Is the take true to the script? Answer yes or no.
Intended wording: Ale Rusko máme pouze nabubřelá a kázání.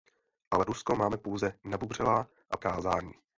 yes